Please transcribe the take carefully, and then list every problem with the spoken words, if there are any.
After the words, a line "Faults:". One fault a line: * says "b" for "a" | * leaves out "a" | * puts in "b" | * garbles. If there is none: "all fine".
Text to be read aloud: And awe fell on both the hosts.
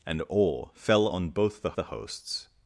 And awe fell on both the the hosts.
Faults:
* puts in "the"